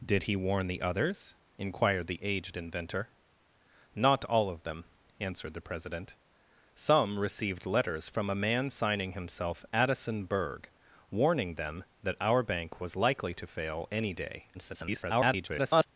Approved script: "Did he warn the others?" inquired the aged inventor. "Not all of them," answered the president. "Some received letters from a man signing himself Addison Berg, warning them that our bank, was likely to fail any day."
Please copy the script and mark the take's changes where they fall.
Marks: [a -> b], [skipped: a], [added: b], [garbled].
"Did he warn the others?" inquired the aged inventor. "Not all of them," answered the president. "Some received letters from a man signing himself Addison Berg, warning them that our bank, was likely to fail any day." [garbled]